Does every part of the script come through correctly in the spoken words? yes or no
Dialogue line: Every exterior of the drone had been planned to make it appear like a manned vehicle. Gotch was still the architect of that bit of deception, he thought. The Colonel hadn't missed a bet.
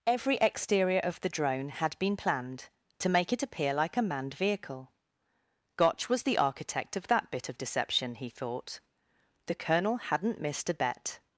no